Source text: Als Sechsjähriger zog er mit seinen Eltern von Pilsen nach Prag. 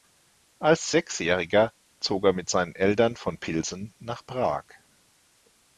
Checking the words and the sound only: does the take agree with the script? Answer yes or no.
yes